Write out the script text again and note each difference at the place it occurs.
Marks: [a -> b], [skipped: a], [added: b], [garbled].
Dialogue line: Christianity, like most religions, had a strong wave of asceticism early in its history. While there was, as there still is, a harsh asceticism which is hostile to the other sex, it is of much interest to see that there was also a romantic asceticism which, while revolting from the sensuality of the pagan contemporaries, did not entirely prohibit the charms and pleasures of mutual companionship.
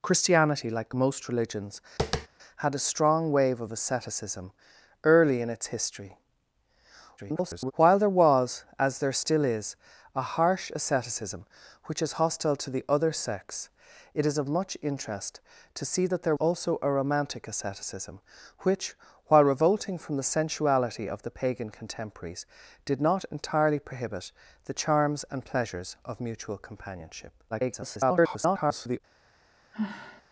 Christianity, like most religions, had a strong wave of asceticism early in its history. [garbled] While there was, as there still is, a harsh asceticism which is hostile to the other sex, it is of much interest to see that there [skipped: was] also a romantic asceticism which, while revolting from the sensuality of the pagan contemporaries, did not entirely prohibit the charms and pleasures of mutual companionship. [garbled]